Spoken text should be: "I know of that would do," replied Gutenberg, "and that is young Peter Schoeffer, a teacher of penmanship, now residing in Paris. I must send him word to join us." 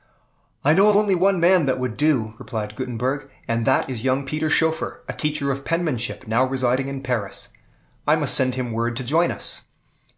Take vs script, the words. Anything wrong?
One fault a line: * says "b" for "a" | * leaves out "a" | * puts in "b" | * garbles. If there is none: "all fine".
* puts in "only one man"